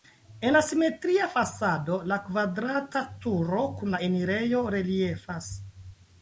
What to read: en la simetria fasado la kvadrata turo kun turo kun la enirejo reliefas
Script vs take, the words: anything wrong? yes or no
yes